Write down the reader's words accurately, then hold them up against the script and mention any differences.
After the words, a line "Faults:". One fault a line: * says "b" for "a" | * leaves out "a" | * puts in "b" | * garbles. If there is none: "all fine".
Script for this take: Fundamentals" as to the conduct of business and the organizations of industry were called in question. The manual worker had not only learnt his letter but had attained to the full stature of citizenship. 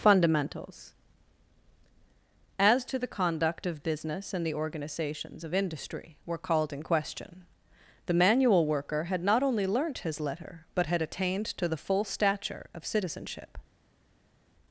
Fundamentals" as to the conduct of business and the organizations of industry were called in question. The manual worker had not only learnt his letter but had attained to the full stature of citizenship.
Faults:
all fine